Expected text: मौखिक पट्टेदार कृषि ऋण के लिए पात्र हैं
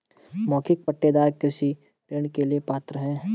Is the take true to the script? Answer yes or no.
yes